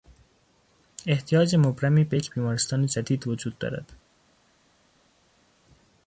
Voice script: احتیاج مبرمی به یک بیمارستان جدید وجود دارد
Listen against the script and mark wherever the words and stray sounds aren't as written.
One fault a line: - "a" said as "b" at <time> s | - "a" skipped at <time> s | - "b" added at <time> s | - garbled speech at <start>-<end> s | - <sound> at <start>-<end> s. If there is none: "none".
none